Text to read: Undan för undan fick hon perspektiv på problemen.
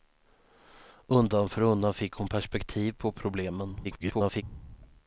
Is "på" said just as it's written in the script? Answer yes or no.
yes